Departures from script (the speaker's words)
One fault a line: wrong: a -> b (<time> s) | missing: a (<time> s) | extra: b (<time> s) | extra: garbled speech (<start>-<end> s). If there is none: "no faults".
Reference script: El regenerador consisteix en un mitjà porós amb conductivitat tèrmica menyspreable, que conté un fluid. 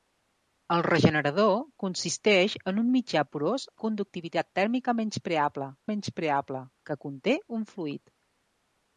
missing: amb (3.7 s)
extra: menyspreable (5.9 s)